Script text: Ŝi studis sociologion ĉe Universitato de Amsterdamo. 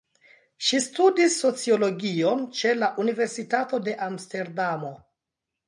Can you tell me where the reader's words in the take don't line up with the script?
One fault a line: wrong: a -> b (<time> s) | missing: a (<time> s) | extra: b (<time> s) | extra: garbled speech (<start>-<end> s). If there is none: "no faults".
extra: la (2.8 s)